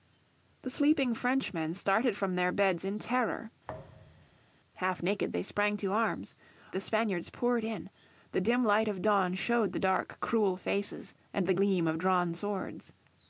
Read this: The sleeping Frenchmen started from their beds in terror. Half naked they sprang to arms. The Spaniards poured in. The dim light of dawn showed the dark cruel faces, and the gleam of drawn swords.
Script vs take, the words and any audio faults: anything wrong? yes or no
yes